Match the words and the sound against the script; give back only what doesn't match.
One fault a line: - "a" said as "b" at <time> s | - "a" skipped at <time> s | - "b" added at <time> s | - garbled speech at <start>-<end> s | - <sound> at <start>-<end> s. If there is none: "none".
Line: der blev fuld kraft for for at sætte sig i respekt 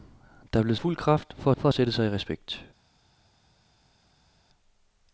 none